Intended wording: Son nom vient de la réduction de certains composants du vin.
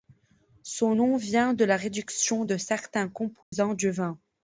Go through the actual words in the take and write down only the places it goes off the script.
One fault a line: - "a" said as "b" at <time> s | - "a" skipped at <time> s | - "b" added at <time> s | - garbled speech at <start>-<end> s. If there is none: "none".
none